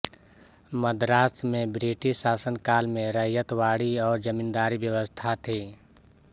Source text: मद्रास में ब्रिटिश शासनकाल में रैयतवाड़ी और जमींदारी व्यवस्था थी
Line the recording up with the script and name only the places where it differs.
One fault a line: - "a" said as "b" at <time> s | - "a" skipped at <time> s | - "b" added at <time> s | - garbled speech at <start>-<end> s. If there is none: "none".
none